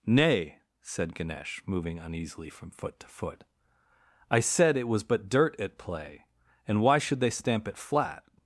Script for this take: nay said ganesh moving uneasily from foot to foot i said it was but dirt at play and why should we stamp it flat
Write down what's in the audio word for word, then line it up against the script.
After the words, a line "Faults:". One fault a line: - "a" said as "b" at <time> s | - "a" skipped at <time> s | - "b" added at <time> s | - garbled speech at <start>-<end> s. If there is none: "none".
nay said ganesh moving uneasily from foot to foot i said it was but dirt at play and why should they stamp it flat
Faults:
- "we" said as "they" at 7.2 s